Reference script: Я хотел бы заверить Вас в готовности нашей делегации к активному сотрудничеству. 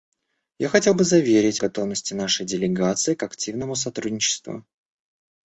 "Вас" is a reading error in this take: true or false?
true